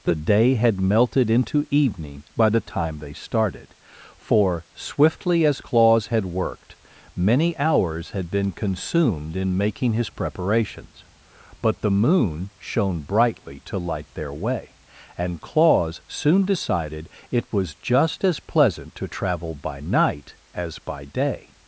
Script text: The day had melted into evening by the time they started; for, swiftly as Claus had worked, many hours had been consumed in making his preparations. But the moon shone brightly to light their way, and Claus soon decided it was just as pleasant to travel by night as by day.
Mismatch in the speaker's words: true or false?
false